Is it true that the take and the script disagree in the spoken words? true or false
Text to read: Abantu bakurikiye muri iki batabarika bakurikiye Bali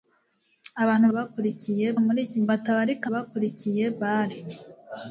false